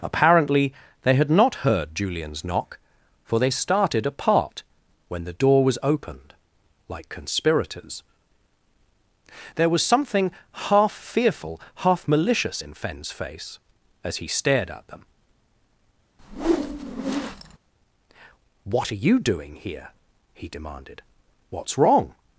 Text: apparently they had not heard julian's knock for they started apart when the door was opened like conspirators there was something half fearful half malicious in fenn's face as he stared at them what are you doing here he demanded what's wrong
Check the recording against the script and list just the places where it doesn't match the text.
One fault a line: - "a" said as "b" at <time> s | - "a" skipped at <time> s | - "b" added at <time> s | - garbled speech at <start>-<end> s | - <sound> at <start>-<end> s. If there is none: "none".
- whoosh at 16.2-17.6 s